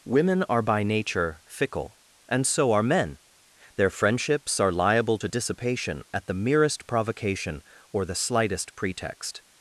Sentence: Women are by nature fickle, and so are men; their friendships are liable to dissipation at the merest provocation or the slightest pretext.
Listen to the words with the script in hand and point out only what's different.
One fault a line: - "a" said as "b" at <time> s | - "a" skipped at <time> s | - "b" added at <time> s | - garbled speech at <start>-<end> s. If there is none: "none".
none